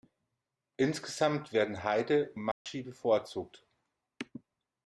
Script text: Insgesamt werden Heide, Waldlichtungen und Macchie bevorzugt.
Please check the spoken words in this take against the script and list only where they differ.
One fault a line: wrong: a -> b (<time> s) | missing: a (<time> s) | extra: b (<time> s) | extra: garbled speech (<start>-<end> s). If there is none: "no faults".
missing: Waldlichtungen (2.3 s)